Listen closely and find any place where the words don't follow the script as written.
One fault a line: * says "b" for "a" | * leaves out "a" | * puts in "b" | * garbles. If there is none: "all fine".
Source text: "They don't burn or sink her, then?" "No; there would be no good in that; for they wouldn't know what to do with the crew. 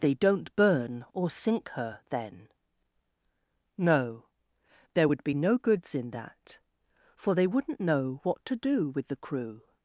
* says "goods" for "good"